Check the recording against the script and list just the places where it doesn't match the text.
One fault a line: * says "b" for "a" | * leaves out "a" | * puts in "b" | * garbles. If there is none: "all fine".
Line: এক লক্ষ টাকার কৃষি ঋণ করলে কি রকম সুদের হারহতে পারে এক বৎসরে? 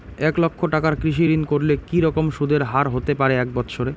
all fine